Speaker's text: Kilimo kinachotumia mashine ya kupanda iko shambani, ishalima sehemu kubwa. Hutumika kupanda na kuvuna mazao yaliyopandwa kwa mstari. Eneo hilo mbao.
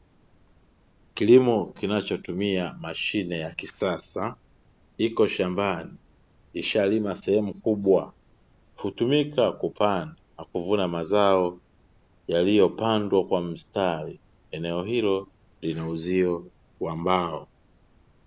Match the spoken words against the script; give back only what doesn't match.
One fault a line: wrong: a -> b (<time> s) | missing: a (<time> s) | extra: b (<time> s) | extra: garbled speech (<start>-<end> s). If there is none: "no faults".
wrong: kupanda -> kisasa (3.5 s)
extra: lina uzio wa (15.6 s)